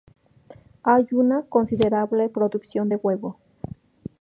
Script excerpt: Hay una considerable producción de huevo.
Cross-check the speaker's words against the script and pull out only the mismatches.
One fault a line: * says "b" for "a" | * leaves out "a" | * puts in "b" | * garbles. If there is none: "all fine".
all fine